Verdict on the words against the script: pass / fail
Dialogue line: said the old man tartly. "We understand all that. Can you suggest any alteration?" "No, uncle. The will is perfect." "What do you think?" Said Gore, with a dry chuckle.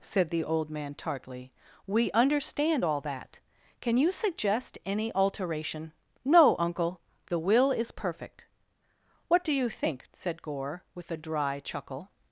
pass